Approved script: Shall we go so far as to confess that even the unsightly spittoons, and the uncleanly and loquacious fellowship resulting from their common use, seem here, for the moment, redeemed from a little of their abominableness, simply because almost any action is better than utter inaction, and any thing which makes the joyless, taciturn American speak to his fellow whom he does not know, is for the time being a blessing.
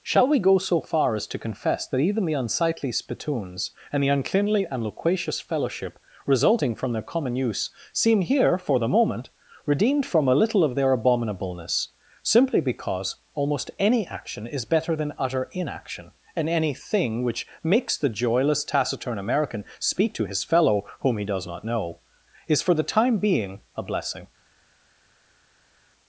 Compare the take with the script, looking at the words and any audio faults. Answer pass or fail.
pass